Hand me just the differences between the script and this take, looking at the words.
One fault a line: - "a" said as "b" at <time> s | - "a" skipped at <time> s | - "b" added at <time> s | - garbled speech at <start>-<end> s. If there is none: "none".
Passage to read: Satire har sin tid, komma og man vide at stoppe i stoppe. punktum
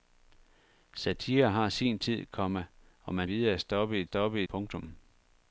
none